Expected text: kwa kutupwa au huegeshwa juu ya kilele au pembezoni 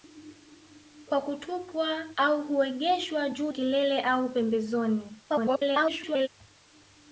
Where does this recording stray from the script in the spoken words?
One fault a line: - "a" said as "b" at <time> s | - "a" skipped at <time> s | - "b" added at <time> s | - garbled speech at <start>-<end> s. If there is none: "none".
- "ya" skipped at 3.5 s
- garbled speech at 5.3-6.3 s